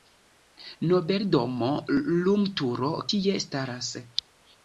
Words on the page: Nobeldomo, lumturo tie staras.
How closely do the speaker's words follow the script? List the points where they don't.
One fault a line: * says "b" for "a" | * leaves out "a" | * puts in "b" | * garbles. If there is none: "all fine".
all fine